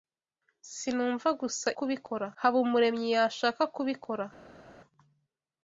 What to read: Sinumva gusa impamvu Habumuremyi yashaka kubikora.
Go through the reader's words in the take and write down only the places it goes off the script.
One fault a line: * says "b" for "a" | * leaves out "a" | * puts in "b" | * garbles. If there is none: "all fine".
* says "kubikora" for "impamvu"